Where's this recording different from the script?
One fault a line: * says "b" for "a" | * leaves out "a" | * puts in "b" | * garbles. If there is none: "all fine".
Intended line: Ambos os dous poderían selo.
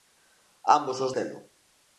* leaves out "dous poderían"